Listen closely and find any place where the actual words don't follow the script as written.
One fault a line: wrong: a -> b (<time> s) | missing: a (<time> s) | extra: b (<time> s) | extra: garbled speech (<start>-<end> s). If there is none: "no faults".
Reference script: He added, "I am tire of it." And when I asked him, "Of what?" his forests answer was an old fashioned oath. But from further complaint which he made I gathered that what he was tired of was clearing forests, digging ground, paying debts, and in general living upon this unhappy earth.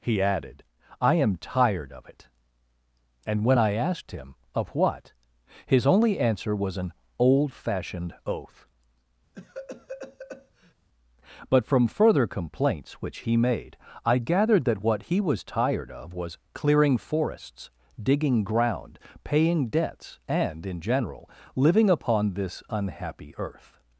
wrong: tire -> tired (1.4 s)
wrong: forests -> only (5.9 s)
wrong: complaint -> complaints (12.3 s)